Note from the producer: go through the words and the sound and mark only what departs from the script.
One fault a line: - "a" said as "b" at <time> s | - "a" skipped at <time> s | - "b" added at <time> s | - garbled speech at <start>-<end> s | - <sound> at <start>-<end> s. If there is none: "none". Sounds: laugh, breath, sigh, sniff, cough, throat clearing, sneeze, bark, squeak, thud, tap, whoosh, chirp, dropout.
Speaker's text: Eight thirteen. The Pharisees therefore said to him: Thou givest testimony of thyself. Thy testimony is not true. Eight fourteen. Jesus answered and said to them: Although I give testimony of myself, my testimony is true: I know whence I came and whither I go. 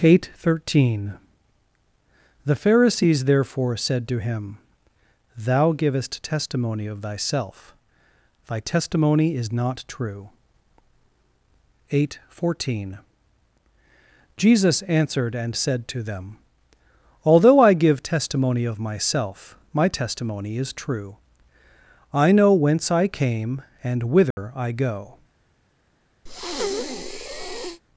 - dropout at 24.3-24.4 s
- breath at 26.3-27.8 s